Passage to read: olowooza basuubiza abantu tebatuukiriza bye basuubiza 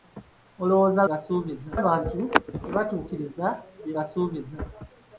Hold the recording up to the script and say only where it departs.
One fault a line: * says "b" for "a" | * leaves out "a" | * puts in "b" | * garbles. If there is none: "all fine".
all fine